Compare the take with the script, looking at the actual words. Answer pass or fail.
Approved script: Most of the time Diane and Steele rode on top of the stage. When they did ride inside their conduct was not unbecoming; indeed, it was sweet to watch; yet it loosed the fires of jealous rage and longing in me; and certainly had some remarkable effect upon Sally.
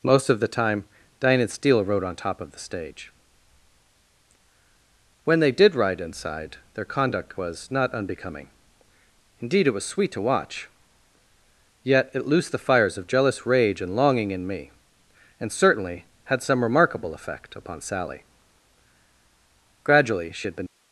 fail